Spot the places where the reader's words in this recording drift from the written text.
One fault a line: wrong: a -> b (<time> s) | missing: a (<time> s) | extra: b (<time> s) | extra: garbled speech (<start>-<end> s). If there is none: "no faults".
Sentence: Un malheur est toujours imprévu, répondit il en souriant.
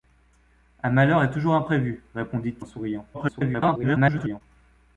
missing: il (2.5 s)
extra: garbled speech (3.1-4.4 s)